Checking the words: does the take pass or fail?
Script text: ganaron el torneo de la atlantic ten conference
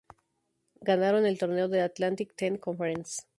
pass